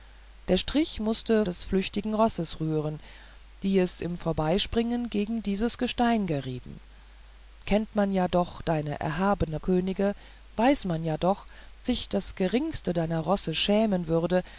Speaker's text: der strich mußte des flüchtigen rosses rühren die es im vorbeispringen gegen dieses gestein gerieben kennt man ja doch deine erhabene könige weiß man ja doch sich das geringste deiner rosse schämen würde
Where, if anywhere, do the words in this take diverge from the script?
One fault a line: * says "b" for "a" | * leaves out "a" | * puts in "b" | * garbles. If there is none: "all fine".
all fine